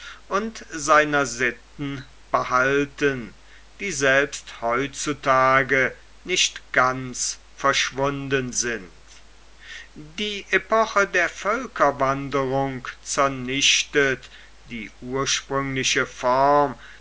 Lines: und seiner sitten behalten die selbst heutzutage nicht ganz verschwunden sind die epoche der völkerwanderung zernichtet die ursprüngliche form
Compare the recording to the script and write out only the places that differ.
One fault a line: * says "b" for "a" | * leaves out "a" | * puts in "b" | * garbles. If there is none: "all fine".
all fine